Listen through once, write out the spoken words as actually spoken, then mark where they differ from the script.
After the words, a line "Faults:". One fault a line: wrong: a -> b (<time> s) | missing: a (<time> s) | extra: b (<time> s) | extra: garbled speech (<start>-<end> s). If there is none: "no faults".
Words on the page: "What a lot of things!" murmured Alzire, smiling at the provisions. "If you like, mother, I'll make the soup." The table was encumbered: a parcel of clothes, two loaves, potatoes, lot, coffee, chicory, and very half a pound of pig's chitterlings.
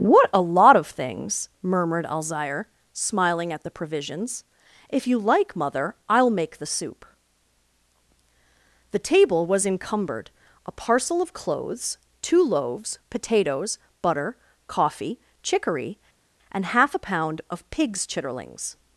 "What a lot of things!" murmured Alzire, smiling at the provisions. "If you like, mother, I'll make the soup." The table was encumbered: a parcel of clothes, two loaves, potatoes, butter, coffee, chicory, and half a pound of pig's chitterlings.
Faults:
wrong: lot -> butter (14.0 s)
missing: very (16.7 s)